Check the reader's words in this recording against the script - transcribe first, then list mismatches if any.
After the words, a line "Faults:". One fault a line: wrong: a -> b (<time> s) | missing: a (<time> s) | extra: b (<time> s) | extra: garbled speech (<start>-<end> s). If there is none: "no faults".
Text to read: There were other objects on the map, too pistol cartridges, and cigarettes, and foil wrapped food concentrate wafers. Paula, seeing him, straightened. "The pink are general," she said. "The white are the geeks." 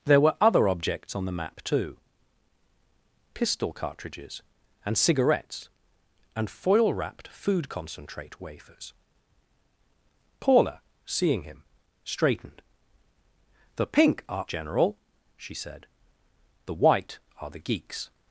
There were other objects on the map, too pistol cartridges, and cigarettes, and foil wrapped food concentrate wafers. Paula, seeing him, straightened. "The pink are general," she said. "The white are the geeks."
Faults:
no faults